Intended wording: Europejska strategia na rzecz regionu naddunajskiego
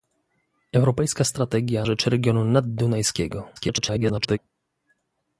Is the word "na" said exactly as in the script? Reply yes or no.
no